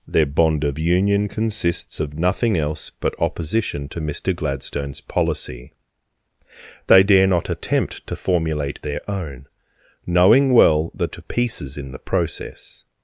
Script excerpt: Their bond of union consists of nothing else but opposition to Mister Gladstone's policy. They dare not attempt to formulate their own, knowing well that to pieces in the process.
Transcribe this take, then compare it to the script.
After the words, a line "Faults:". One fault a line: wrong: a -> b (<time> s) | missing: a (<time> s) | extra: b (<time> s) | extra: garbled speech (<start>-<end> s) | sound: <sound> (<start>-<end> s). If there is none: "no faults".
Their bond of union consists of nothing else but opposition to Mister Gladstone's policy. They dare not attempt to formulate their own, knowing well that to pieces in the process.
Faults:
no faults